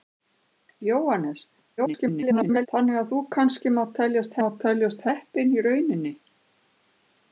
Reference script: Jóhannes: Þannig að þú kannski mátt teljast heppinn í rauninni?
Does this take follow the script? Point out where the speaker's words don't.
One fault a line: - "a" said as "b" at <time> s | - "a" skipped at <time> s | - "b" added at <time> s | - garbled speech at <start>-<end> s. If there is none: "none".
- garbled speech at 1.8-2.7 s
- "mátt teljast" added at 4.4 s